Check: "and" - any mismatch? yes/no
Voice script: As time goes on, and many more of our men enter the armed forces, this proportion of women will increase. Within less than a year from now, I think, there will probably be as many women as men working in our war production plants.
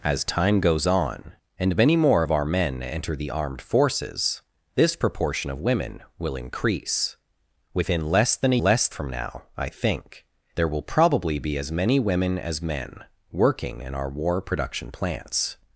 no